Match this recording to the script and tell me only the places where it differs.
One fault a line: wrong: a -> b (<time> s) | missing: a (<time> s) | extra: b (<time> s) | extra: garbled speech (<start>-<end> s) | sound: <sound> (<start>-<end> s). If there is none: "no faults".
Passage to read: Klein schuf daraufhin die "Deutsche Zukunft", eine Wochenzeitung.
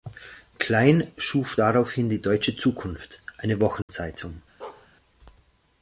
sound: dropout (3.8-3.9 s)
sound: bark (4.6-4.9 s)